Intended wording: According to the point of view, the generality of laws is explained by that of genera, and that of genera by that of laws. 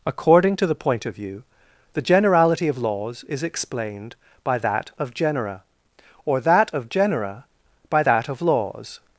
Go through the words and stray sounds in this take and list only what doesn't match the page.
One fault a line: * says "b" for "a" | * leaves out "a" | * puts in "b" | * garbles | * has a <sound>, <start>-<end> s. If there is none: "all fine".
* says "or" for "and"